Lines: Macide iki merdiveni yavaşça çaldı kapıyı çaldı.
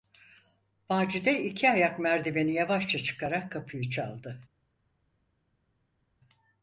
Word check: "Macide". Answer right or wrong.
right